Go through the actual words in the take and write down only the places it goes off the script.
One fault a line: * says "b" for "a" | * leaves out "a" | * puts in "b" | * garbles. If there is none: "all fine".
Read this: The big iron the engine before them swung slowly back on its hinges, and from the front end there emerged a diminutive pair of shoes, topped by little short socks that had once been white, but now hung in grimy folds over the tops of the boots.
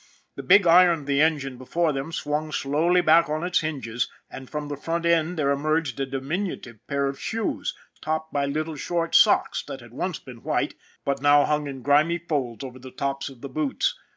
all fine